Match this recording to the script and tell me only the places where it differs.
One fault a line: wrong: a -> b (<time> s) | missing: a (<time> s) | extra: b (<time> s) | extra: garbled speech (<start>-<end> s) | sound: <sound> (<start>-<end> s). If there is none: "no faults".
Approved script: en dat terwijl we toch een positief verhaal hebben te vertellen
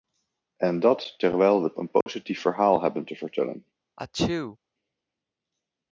missing: toch (1.8 s)
sound: dropout (2.0-2.1 s)
sound: sneeze (4.0-4.6 s)